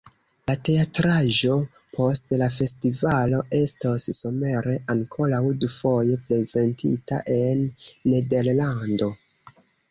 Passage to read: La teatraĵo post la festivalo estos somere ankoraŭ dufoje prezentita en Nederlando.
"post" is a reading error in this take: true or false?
false